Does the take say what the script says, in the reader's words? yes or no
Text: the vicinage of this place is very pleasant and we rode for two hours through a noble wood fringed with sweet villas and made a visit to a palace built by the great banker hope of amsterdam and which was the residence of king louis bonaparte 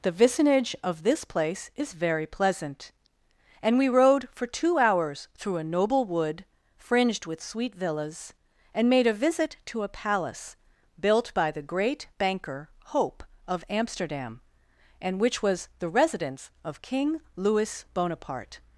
yes